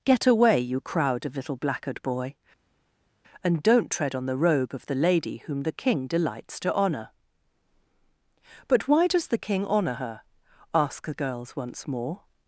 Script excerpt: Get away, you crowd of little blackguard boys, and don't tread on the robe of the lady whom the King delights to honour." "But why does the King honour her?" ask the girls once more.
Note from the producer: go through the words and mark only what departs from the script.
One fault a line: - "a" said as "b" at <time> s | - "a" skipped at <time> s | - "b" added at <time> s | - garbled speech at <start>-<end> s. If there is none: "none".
- "boys" said as "boy" at 2.0 s